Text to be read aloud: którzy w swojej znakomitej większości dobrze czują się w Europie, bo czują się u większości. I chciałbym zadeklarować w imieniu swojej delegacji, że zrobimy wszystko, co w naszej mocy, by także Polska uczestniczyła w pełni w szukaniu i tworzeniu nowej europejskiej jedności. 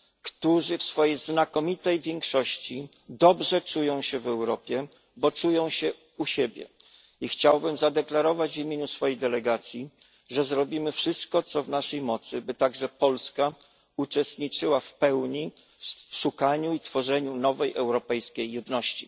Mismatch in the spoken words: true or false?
true